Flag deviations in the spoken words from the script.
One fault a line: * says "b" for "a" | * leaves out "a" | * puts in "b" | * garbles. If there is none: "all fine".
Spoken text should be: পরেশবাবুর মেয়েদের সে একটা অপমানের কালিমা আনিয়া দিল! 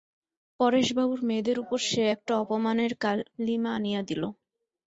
* puts in "উপর"